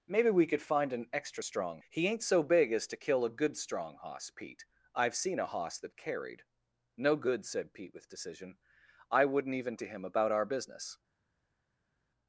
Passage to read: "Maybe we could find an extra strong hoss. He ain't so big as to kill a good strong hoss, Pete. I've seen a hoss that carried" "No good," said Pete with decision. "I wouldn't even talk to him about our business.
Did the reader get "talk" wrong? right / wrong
wrong